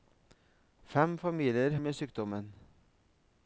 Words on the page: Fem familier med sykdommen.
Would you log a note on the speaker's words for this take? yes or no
no